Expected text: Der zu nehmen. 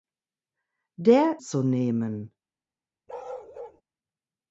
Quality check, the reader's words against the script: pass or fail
pass